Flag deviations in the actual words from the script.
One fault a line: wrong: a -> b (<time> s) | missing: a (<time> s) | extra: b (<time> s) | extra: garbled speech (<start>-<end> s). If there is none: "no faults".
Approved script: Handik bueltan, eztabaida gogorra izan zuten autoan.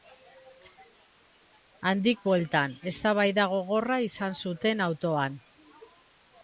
no faults